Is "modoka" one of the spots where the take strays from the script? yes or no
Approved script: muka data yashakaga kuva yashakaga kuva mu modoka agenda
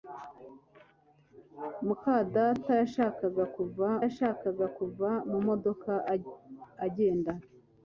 no